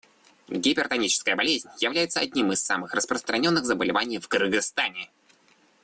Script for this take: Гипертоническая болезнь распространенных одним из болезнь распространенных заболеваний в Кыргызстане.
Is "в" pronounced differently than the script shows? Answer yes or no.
no